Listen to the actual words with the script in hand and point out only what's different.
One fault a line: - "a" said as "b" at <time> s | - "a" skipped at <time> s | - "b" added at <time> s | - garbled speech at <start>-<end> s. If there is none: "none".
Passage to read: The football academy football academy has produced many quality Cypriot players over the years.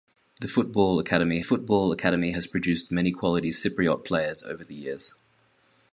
none